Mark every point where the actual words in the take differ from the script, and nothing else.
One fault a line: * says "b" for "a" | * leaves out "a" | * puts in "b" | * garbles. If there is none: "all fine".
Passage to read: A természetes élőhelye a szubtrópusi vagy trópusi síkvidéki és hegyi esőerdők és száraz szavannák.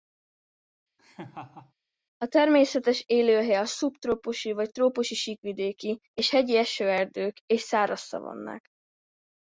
all fine